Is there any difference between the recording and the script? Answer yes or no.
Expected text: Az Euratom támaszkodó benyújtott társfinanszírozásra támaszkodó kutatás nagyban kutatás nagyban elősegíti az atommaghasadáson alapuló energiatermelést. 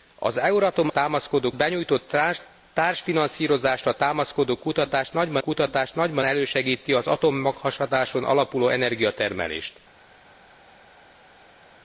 no